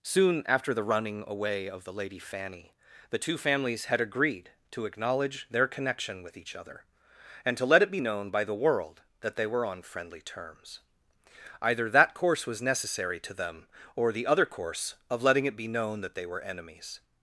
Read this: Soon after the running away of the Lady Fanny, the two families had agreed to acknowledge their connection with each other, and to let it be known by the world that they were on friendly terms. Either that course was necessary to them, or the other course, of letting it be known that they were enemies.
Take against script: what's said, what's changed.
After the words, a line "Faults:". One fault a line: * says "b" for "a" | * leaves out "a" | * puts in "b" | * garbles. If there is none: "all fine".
Soon after the running away of the Lady Fanny, the two families had agreed to acknowledge their connection with each other, and to let it be known by the world that they were on friendly terms. Either that course was necessary to them, or the other course, of letting it be known that they were enemies.
Faults:
all fine